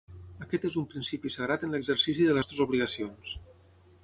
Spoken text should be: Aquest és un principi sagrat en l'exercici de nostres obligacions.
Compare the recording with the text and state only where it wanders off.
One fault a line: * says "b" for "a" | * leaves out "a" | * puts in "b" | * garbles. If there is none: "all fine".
all fine